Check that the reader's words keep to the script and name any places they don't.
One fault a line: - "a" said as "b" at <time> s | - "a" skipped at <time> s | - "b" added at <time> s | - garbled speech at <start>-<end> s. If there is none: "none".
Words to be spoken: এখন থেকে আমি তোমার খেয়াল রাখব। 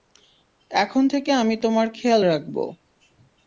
none